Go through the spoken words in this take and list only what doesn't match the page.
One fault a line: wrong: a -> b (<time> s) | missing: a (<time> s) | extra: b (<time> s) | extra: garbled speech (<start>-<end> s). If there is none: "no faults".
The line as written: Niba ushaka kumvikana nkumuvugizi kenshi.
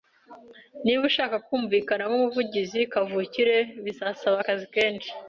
extra: kavukire bizasaba akazi (2.9 s)